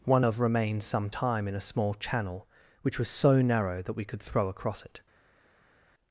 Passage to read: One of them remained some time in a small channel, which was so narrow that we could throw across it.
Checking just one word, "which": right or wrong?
right